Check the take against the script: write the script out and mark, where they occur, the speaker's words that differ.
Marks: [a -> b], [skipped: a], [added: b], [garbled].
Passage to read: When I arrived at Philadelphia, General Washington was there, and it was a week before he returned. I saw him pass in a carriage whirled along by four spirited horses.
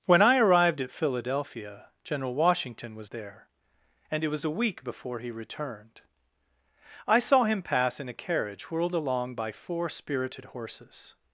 When I arrived at Philadelphia, General Washington was there, and it was a week before he returned. I saw him pass in a carriage whirled along by four spirited horses.